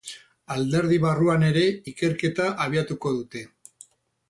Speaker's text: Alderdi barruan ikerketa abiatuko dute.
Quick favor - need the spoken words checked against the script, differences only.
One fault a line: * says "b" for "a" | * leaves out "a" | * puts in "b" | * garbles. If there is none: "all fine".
* puts in "ere"